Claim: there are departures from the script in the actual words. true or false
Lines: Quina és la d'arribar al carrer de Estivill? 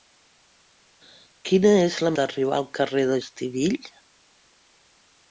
false